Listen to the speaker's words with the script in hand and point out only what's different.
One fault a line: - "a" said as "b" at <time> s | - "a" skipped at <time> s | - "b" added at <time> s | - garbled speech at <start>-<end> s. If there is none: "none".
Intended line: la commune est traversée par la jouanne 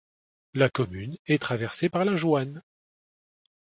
none